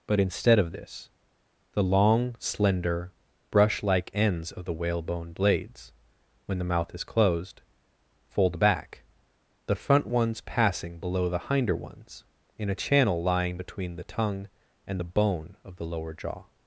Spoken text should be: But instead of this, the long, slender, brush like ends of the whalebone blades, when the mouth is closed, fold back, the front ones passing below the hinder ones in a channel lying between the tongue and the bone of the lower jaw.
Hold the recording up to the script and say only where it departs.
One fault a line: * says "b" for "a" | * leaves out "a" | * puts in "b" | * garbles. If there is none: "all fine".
all fine